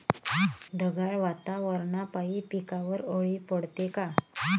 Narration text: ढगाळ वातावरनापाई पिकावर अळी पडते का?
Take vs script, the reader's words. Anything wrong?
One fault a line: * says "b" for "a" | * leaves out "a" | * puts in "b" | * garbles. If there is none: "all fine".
all fine